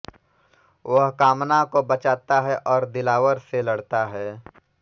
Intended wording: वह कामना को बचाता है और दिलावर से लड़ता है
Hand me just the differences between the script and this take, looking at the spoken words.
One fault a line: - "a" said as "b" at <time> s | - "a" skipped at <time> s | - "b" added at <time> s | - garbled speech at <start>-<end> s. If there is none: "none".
none